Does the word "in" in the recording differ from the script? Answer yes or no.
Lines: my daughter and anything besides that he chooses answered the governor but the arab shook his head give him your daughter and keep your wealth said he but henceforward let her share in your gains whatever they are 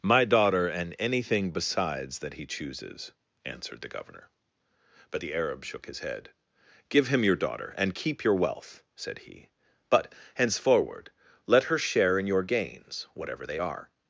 no